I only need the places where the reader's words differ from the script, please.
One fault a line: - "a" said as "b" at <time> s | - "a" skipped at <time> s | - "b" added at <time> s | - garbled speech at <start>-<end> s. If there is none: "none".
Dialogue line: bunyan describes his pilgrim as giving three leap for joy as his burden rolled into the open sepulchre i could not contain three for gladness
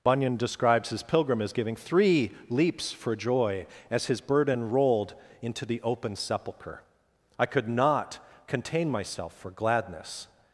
- "leap" said as "leaps" at 2.5 s
- "three" said as "myself" at 8.9 s